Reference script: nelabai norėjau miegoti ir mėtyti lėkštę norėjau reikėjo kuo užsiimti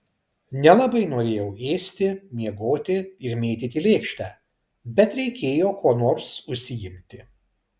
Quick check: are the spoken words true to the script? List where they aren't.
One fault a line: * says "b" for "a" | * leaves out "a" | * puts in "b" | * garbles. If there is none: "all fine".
* puts in "ėsti"
* says "bet" for "norėjau"
* puts in "nors"